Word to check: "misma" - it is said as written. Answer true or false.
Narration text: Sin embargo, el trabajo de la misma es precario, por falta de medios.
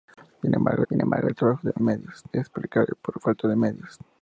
false